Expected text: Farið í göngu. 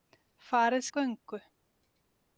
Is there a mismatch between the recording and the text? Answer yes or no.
no